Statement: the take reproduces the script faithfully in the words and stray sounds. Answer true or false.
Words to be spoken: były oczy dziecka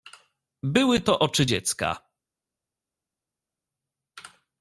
false